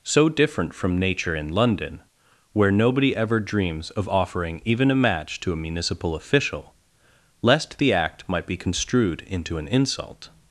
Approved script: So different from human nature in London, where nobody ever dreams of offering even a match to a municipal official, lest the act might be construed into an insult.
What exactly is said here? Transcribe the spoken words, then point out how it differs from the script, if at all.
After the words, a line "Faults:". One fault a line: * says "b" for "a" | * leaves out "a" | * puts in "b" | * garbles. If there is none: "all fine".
So different from nature in London, where nobody ever dreams of offering even a match to a municipal official, lest the act might be construed into an insult.
Faults:
* leaves out "human"